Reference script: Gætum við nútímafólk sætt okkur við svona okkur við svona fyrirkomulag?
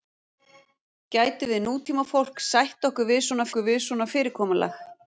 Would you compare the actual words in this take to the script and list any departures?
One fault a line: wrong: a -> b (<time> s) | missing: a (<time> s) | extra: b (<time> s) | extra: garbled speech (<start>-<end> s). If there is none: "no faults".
no faults